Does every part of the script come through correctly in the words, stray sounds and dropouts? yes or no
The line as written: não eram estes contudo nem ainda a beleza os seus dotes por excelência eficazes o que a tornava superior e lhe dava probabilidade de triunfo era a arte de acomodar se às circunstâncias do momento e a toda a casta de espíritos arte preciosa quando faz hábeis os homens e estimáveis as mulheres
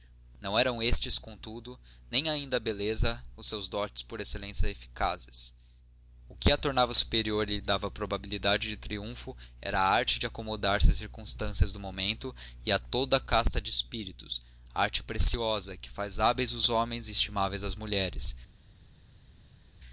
no